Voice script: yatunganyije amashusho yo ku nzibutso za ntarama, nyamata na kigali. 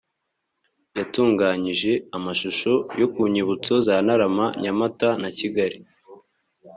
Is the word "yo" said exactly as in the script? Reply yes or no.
yes